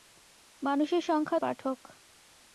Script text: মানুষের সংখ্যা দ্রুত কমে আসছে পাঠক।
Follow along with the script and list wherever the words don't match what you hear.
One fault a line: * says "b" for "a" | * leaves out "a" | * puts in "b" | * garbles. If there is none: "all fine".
* leaves out "দ্রুত কমে আসছে"